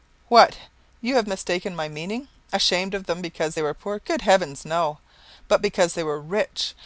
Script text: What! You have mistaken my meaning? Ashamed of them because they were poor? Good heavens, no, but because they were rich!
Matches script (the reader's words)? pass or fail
pass